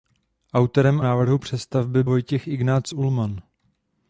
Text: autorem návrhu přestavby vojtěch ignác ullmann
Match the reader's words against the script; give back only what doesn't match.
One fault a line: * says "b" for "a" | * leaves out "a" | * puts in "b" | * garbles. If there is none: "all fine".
all fine